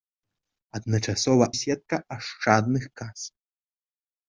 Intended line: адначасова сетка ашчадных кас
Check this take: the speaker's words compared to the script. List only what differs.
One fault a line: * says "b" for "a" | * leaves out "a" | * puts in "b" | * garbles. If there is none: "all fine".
all fine